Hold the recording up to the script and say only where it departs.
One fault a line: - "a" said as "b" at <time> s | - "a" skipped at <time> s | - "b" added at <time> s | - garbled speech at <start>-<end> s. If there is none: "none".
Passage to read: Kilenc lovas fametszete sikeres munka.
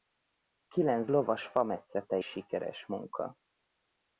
none